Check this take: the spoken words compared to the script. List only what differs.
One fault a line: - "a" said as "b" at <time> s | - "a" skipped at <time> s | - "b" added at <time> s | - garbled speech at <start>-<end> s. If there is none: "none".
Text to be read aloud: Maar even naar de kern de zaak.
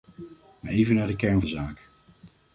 none